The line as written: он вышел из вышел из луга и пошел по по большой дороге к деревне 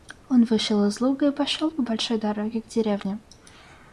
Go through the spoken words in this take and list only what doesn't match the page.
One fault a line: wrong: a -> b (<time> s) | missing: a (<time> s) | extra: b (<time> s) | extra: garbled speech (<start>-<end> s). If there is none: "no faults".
missing: вышел из (1.0 s)
missing: по (1.8 s)